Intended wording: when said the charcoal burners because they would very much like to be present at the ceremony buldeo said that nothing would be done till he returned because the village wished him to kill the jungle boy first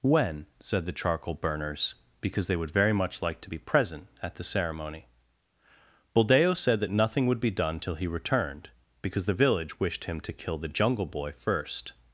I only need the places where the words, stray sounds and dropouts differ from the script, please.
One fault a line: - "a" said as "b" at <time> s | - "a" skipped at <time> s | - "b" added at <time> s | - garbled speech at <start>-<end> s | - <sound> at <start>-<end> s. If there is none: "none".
none